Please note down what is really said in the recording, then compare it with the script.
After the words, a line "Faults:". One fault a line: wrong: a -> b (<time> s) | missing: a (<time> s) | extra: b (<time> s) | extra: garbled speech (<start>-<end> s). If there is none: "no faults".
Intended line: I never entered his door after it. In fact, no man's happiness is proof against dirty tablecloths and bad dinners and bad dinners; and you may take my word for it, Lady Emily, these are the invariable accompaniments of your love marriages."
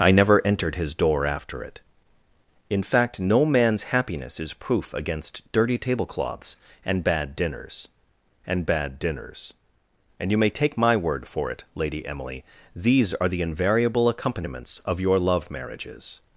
I never entered his door after it. In fact, no man's happiness is proof against dirty tablecloths and bad dinners and bad dinners; and you may take my word for it, Lady Emily, these are the invariable accompaniments of your love marriages."
Faults:
no faults